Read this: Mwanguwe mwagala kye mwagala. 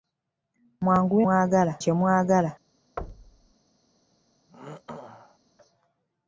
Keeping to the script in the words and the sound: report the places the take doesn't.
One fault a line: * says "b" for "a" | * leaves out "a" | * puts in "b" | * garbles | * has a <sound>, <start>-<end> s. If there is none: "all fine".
* has a thud, 3.0-3.5 s
* has a throat clearing, 4.5-5.4 s